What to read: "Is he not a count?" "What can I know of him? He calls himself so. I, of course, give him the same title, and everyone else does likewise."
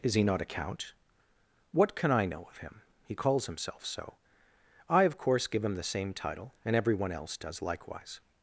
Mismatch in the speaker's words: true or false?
false